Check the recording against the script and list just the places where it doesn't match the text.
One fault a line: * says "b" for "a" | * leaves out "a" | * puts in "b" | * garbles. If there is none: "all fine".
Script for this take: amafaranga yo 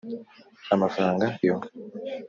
all fine